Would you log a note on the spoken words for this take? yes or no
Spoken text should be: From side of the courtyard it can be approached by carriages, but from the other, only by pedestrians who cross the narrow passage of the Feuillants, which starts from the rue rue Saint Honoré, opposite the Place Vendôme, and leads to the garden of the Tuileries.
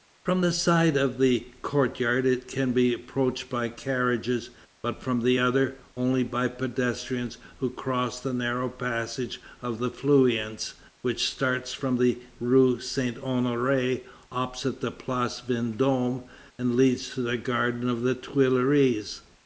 yes